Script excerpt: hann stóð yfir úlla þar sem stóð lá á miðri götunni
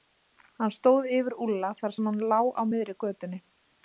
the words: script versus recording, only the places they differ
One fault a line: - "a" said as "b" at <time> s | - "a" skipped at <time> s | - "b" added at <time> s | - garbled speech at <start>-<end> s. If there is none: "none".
- "stóð" said as "hann" at 2.1 s